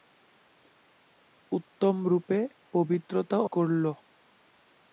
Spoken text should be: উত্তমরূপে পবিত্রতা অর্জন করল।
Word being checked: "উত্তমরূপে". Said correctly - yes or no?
yes